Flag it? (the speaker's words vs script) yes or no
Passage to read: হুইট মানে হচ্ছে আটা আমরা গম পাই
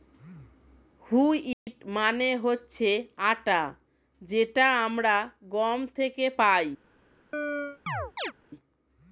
yes